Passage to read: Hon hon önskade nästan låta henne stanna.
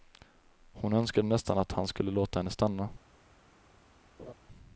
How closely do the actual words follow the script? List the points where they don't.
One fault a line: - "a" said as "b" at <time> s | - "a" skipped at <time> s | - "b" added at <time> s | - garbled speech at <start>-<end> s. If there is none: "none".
- "hon" skipped at 0.9 s
- "att han skulle" added at 1.6 s